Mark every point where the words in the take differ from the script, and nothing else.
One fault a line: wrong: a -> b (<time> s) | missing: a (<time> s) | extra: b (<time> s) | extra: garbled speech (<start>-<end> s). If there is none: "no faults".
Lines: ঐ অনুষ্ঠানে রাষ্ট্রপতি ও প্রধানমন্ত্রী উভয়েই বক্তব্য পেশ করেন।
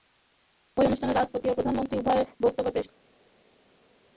no faults